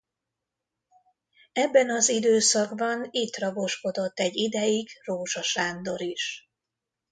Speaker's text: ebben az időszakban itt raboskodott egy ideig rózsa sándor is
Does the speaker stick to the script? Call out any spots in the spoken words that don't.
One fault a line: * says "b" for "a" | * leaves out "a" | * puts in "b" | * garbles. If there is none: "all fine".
all fine